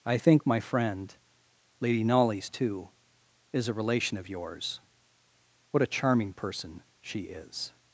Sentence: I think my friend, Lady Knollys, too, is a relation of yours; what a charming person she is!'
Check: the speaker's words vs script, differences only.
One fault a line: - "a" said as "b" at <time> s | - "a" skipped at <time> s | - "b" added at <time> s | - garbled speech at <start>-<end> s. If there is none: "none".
none